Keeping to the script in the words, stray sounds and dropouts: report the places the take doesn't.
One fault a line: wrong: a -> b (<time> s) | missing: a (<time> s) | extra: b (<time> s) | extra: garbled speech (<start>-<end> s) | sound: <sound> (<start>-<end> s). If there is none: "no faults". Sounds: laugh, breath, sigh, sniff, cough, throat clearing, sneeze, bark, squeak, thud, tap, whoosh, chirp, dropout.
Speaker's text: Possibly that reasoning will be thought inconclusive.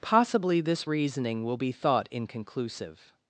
wrong: that -> this (0.6 s)